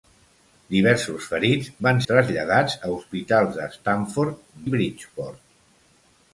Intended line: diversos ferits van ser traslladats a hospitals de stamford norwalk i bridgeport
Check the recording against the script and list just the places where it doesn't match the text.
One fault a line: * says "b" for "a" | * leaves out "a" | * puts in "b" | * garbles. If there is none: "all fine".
* leaves out "ser"
* leaves out "norwalk"